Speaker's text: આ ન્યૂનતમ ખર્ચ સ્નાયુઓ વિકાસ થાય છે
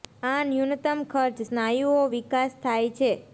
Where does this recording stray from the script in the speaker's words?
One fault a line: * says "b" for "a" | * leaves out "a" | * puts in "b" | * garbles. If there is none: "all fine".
all fine